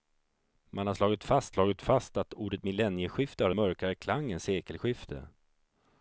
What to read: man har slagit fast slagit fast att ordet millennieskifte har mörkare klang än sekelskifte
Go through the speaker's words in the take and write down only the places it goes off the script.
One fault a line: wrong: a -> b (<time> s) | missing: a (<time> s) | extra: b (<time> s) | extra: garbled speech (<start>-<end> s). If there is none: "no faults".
no faults